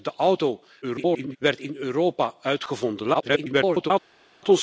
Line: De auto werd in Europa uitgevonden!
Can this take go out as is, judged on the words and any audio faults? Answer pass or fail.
fail